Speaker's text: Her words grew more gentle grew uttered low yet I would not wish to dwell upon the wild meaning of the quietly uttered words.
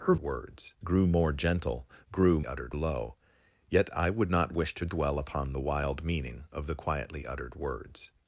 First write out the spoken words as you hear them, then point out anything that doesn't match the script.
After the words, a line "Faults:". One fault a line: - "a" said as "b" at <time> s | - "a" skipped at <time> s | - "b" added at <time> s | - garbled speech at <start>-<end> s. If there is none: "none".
Her words grew more gentle grew uttered low yet I would not wish to dwell upon the wild meaning of the quietly uttered words.
Faults:
none